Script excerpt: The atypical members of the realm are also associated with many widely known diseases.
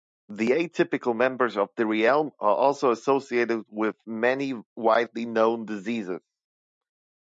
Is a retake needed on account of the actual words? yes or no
no